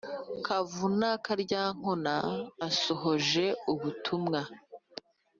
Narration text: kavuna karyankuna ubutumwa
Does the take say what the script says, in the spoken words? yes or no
no